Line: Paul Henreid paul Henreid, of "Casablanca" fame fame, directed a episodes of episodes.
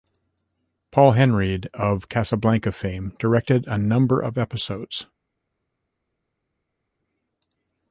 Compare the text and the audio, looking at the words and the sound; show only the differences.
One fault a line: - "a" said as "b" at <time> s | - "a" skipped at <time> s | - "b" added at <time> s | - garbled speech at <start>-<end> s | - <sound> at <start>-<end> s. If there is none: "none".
- "paul Henreid" skipped at 1.7 s
- "fame" skipped at 3.1 s
- "episodes" said as "number" at 3.8 s